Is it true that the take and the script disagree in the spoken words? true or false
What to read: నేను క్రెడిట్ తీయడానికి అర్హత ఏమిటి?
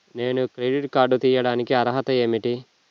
true